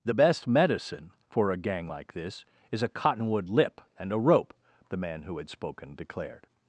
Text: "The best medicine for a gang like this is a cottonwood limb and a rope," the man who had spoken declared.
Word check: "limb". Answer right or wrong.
wrong